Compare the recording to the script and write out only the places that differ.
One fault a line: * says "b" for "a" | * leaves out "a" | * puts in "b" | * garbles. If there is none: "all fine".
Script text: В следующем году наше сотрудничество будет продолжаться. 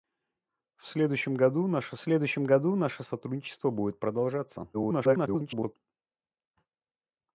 * puts in "следующем году наше"
* garbles